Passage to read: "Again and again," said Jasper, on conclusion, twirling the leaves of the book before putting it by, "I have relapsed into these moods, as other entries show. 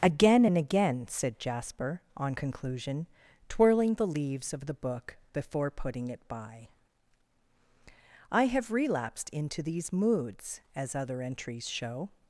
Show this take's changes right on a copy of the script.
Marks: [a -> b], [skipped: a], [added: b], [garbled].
"Again and again," said Jasper, on conclusion, twirling the leaves of the book before putting it by, "I have relapsed into these moods, as other entries show.